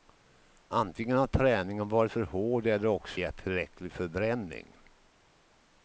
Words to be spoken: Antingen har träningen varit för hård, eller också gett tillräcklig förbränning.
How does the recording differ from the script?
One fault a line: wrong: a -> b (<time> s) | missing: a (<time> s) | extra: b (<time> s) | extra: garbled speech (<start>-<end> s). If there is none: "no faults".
no faults